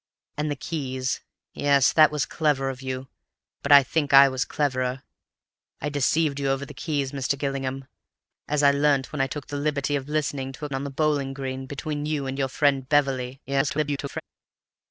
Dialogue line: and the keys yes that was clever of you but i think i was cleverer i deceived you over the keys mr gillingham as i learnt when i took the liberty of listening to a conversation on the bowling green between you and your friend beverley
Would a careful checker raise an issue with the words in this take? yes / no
yes